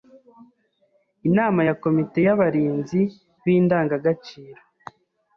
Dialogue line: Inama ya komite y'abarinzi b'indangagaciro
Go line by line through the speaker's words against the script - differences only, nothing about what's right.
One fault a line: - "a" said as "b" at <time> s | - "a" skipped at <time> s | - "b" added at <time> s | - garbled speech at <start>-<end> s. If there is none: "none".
none